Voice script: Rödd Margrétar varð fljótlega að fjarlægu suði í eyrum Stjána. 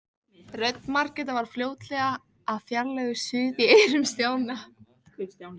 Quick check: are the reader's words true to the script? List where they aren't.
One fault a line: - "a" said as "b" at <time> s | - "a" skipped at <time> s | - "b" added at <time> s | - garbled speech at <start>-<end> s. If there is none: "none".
none